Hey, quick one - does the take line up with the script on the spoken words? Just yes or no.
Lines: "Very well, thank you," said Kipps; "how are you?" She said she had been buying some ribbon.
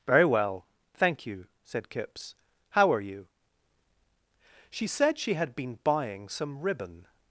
yes